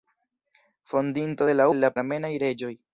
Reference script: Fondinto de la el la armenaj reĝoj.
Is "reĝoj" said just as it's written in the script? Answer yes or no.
yes